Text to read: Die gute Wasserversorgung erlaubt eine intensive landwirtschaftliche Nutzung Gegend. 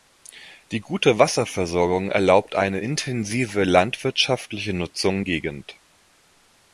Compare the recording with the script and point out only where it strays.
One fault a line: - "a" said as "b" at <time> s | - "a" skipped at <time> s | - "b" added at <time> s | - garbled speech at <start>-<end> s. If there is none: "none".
none